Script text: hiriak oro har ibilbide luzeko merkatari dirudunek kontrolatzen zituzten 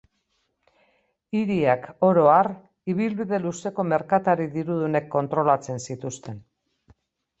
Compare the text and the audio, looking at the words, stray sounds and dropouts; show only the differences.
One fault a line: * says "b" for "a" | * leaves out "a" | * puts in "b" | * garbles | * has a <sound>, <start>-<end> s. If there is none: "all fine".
all fine